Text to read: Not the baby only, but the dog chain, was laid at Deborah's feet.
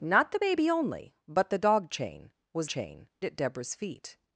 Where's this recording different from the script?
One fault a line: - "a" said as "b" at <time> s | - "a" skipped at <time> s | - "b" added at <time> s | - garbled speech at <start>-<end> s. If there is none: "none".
- "laid" said as "chain" at 2.7 s